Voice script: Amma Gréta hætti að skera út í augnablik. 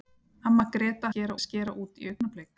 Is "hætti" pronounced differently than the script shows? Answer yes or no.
yes